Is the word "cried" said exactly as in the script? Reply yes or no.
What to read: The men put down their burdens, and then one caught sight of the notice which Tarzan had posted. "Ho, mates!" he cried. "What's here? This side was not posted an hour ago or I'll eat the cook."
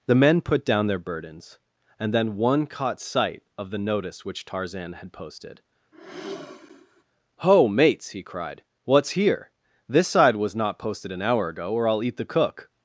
yes